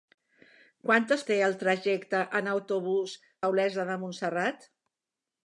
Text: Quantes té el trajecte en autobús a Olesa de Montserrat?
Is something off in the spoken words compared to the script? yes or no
no